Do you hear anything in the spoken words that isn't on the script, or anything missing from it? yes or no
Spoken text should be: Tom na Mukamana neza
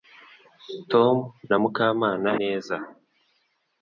no